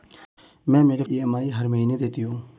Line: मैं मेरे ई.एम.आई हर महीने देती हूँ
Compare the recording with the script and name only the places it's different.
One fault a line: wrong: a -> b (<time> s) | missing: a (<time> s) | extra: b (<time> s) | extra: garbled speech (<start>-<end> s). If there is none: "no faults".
no faults